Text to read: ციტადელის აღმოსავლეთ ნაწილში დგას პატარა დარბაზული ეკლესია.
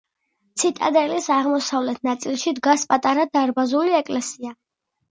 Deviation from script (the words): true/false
false